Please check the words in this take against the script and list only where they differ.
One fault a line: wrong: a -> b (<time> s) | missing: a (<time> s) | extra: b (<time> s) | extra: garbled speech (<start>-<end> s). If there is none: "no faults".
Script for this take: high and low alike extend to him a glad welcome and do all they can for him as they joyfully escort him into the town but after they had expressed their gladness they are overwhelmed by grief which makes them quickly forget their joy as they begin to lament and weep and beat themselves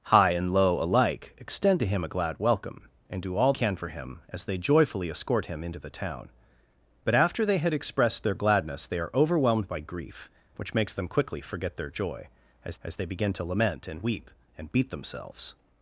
missing: they (3.5 s)
extra: as (12.8 s)